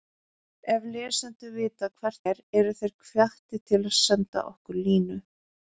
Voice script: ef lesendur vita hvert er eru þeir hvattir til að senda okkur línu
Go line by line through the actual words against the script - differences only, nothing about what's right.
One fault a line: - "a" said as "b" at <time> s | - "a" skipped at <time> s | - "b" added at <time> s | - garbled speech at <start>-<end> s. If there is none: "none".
none